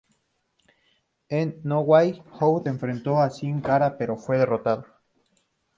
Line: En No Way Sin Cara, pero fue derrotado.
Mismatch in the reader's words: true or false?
true